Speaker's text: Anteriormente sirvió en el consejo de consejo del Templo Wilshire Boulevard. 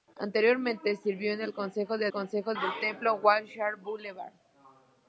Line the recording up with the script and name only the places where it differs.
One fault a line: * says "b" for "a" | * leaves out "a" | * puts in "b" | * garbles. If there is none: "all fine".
all fine